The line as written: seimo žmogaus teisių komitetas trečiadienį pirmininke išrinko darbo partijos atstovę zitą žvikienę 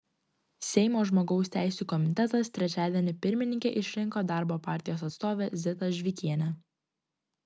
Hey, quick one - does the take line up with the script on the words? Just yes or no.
yes